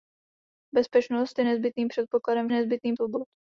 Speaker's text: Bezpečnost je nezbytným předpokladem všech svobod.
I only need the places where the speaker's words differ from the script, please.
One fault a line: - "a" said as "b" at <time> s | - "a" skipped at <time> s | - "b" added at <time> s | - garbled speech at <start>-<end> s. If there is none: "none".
- "všech" said as "nezbytným" at 2.5 s